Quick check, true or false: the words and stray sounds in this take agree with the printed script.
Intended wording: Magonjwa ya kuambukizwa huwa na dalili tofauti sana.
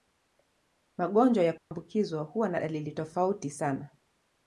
false